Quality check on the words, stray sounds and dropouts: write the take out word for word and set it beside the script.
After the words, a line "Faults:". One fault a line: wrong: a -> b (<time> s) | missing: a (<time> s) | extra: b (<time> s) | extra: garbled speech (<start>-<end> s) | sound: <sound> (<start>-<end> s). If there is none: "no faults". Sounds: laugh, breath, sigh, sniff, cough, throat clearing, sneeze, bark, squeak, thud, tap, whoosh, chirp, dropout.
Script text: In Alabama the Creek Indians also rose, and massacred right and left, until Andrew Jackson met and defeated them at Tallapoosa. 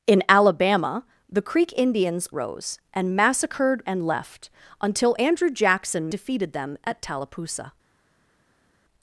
In Alabama the Creek Indians rose, and massacred and left, until Andrew Jackson defeated them at Tallapoosa.
Faults:
missing: also (2.3 s)
missing: right (3.8 s)
missing: met and (6.1 s)